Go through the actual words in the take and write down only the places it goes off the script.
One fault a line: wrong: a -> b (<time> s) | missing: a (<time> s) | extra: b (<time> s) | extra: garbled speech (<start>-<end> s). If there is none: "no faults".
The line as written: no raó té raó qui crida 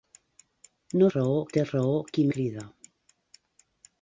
no faults